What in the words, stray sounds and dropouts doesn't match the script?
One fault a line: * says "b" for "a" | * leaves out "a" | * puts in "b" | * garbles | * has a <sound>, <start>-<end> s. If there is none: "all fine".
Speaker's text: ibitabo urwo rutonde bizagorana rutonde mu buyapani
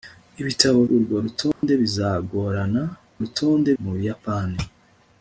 * has a dropout, 1.5-1.6 s